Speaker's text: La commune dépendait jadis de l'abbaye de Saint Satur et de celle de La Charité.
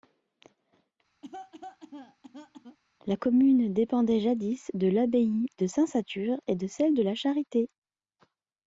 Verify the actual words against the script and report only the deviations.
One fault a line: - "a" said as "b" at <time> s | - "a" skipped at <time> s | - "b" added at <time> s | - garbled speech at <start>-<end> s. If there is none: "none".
none